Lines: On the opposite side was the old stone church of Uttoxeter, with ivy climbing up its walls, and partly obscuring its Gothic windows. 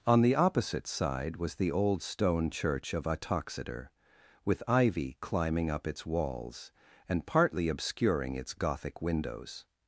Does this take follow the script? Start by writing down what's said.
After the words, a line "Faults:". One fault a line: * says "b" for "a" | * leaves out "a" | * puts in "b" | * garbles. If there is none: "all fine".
On the opposite side was the old stone church of Uttoxeter, with ivy climbing up its walls, and partly obscuring its Gothic windows.
Faults:
all fine